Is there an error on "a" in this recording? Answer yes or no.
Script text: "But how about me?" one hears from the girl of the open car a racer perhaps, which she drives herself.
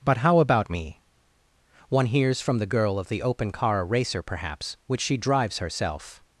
yes